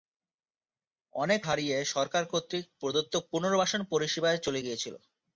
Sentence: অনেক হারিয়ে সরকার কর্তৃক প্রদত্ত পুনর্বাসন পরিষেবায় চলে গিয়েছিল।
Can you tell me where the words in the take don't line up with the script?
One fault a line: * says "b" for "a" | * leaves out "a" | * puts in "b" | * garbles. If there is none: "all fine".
all fine